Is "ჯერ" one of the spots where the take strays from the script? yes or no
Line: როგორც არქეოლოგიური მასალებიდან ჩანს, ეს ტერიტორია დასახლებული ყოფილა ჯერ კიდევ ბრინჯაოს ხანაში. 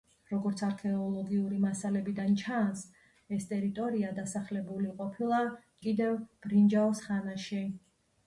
yes